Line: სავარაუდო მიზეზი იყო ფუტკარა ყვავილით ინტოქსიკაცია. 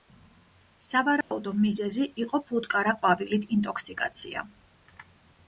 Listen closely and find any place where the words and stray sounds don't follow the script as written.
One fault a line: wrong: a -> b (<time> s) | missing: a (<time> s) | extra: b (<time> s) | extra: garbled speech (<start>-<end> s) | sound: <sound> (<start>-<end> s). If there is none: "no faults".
sound: dropout (1.2-1.3 s)